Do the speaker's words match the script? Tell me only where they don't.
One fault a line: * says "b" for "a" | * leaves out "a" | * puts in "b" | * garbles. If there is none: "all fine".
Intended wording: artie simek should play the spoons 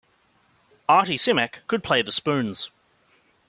* says "could" for "should"